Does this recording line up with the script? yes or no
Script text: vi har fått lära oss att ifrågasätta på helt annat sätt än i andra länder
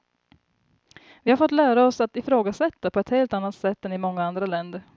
no